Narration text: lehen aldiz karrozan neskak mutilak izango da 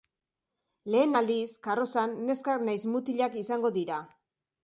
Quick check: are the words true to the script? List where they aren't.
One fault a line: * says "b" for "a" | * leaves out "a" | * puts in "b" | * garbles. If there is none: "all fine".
* puts in "nahiz"
* says "dira" for "da"